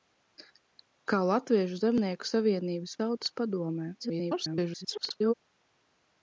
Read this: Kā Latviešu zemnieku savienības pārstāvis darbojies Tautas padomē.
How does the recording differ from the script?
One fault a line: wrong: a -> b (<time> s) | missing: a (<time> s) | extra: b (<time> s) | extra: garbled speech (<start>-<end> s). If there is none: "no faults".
missing: pārstāvis darbojies (3.0 s)
extra: garbled speech (4.0-5.3 s)